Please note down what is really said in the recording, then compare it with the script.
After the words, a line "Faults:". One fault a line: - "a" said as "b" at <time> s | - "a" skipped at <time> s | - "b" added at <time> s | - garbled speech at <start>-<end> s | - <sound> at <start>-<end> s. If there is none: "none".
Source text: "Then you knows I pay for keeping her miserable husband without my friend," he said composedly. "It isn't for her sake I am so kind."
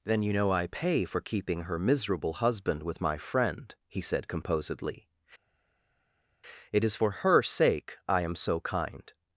"Then you know I pay for keeping her miserable husband with my friend," he said composedly. "It is for her sake I am so kind."
Faults:
- "knows" said as "know" at 0.3 s
- "without" said as "with" at 2.8 s
- "isn't" said as "is" at 6.8 s